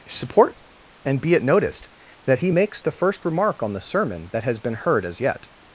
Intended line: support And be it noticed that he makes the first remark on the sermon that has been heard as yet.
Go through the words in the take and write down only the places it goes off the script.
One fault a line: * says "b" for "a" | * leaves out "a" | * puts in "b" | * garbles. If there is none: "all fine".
all fine